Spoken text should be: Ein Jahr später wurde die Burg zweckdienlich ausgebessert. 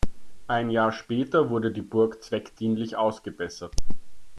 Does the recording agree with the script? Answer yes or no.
yes